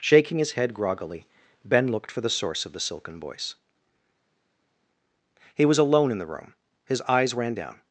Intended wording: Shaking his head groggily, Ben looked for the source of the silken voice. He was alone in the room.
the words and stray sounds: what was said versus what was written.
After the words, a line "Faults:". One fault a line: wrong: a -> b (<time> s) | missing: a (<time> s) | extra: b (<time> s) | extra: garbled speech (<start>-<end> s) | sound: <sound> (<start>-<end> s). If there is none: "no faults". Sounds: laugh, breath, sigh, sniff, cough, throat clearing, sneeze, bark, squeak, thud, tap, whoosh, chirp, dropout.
Shaking his head groggily, Ben looked for the source of the silken voice. He was alone in the room. His eyes ran down
Faults:
extra: His eyes ran down (6.9 s)